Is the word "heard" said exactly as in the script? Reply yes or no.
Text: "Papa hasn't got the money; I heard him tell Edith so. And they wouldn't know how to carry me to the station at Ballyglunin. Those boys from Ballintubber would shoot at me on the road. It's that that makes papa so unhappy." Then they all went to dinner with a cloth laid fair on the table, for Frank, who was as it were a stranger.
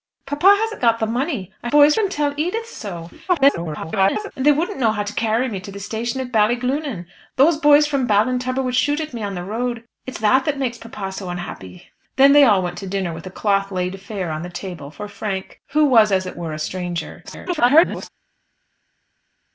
no